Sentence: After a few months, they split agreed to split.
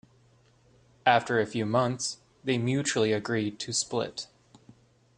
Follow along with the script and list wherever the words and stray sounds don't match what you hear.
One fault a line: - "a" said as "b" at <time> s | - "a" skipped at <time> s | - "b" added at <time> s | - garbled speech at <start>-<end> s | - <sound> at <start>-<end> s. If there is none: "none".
- "split" said as "mutually" at 2.6 s